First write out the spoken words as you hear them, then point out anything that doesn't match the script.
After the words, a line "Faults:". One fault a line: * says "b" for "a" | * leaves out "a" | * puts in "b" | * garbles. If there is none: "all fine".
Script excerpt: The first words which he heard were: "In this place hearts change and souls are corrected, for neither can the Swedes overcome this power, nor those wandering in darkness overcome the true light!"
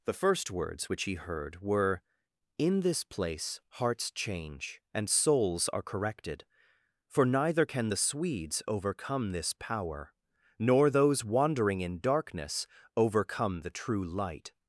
The first words which he heard were: "In this place hearts change and souls are corrected, for neither can the Swedes overcome this power, nor those wandering in darkness overcome the true light!"
Faults:
all fine